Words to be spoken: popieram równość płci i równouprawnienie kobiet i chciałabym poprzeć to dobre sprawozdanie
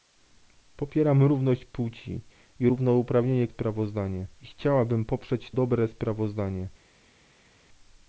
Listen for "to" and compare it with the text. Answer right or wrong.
wrong